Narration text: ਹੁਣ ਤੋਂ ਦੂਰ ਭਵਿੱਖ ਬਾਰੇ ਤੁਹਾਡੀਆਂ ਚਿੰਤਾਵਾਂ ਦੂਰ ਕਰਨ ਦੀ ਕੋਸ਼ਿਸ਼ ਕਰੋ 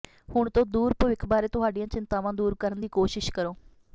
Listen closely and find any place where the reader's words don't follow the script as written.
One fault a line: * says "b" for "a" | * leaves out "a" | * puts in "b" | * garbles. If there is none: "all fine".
all fine